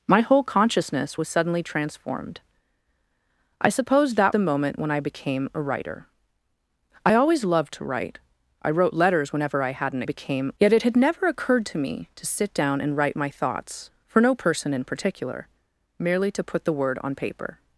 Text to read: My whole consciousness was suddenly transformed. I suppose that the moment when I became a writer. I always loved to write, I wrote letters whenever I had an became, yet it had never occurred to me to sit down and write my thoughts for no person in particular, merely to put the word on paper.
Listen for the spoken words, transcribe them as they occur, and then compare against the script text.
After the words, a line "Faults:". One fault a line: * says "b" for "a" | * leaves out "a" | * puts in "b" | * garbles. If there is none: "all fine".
My whole consciousness was suddenly transformed. I suppose that the moment when I became a writer. I always loved to write, I wrote letters whenever I had an became, yet it had never occurred to me to sit down and write my thoughts for no person in particular, merely to put the word on paper.
Faults:
all fine